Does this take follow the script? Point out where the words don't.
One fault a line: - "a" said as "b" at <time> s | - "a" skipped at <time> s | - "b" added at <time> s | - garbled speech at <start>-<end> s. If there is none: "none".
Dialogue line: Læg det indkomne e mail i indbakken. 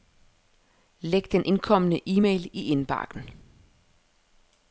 - "det" said as "den" at 1.3 s